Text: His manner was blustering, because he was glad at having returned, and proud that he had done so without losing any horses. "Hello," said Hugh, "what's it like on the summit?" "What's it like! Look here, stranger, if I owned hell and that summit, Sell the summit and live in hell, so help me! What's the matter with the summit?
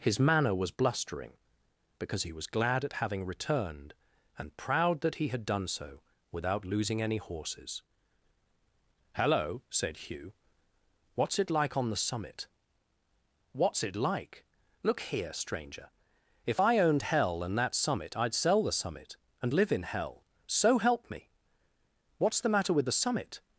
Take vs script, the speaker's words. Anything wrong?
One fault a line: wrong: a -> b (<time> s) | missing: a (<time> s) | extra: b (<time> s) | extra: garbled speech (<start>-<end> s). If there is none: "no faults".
extra: I'd (18.2 s)